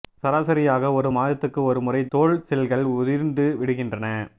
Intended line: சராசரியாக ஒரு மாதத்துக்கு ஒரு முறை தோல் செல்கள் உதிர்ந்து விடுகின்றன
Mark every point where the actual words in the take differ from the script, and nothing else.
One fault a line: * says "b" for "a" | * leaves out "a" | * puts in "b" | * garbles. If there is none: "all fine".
all fine